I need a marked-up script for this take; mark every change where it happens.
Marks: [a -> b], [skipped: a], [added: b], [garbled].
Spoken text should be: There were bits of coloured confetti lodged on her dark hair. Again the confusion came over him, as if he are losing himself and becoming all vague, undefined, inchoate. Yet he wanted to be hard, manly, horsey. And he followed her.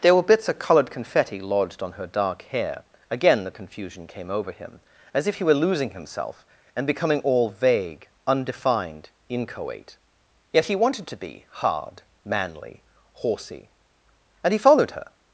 There were bits of coloured confetti lodged on her dark hair. Again the confusion came over him, as if he [are -> were] losing himself and becoming all vague, undefined, inchoate. Yet he wanted to be hard, manly, horsey. And he followed her.